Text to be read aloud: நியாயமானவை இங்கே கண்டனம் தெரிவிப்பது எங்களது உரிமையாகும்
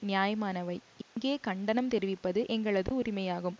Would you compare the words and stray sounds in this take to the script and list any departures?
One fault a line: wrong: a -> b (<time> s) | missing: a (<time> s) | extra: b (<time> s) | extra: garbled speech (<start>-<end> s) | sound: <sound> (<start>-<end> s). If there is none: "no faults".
sound: dropout (1.0-1.2 s)